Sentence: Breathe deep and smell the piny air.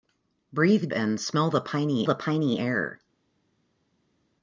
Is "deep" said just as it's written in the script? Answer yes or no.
no